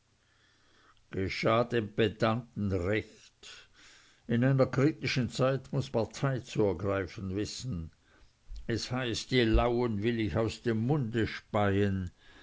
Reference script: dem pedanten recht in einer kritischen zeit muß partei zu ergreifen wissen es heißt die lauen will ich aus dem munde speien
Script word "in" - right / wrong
right